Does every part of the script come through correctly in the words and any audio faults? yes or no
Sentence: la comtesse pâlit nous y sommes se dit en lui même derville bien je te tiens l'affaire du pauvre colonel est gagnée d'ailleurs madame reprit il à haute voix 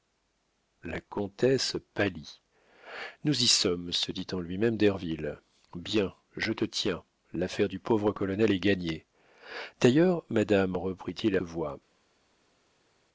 no